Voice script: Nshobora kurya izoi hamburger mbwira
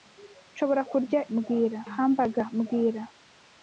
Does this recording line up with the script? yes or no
no